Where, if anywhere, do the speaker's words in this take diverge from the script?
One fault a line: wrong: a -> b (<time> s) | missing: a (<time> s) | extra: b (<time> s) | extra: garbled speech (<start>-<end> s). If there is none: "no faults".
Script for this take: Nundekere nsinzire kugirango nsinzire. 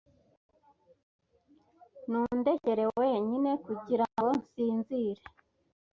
wrong: nsinzire -> wenyine (3.0 s)